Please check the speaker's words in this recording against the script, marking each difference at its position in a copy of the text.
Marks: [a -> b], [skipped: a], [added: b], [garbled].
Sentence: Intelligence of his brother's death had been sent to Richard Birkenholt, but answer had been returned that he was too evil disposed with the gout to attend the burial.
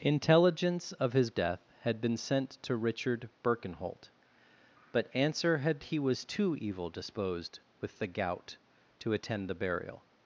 Intelligence of his [skipped: brother's] death had been sent to Richard Birkenholt, but answer had [skipped: been returned that] he was too evil disposed with the gout to attend the burial.